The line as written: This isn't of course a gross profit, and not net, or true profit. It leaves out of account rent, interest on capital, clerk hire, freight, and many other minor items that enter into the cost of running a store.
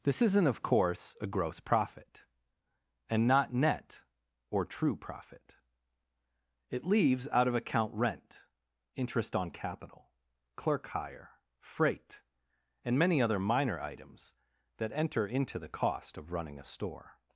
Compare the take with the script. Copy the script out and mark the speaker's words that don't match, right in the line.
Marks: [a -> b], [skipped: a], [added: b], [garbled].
This isn't of course a gross profit, and not net, or true profit. It leaves out of account rent, interest on capital, clerk hire, freight, and many other minor items that enter into the cost of running a store.